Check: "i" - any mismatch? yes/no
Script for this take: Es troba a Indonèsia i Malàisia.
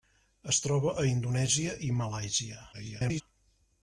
no